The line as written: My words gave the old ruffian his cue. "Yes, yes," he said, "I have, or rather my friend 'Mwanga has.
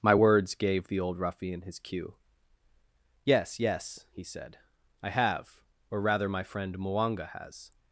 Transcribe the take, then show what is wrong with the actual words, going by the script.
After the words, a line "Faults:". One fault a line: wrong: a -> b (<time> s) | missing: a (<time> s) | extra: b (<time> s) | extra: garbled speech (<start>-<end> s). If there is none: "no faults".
My words gave the old ruffian his cue. "Yes, yes," he said, "I have, or rather my friend 'Mwanga has.
Faults:
no faults